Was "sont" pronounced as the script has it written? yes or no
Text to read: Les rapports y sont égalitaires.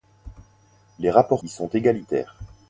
yes